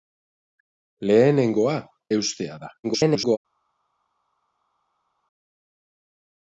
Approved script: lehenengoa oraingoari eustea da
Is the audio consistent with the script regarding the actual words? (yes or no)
no